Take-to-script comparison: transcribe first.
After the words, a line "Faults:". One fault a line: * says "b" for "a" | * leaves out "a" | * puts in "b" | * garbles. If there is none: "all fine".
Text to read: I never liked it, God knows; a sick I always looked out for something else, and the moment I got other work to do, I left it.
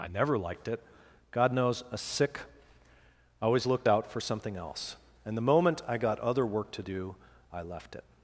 I never liked it, God knows; a sick I always looked out for something else, and the moment I got other work to do, I left it.
Faults:
all fine